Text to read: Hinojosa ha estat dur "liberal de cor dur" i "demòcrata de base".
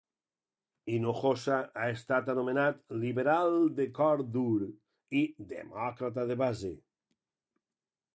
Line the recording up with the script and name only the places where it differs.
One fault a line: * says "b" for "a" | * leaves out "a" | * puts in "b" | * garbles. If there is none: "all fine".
* says "anomenat" for "dur"